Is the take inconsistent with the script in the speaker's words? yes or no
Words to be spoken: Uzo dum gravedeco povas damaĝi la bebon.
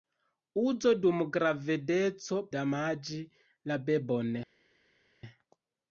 yes